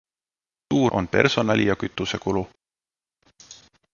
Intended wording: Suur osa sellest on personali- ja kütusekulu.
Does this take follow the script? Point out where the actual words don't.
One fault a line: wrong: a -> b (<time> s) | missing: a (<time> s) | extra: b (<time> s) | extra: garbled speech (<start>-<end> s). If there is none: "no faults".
missing: osa sellest (0.9 s)